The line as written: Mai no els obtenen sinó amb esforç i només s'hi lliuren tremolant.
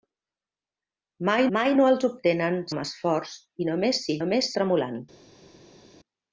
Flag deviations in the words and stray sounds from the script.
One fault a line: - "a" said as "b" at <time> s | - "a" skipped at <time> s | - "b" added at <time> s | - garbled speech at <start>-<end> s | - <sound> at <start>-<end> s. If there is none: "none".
- "mai" added at 1.6 s
- "sinó" skipped at 2.6 s
- "lliuren" said as "només" at 4.2 s